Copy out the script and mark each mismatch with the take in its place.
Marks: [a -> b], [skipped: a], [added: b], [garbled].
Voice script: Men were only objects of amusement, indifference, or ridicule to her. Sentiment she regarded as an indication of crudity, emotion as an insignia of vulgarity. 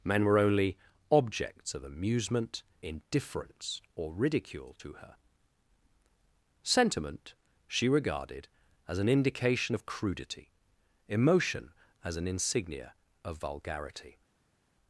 Men were only objects of amusement, indifference, or ridicule to her. Sentiment she regarded as an indication of crudity, emotion as an insignia of vulgarity.